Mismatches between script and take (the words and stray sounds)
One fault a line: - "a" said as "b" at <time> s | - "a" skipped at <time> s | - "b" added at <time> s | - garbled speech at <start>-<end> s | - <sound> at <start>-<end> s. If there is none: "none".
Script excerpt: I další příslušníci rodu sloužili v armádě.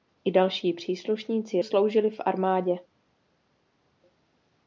- "rodu" skipped at 1.6 s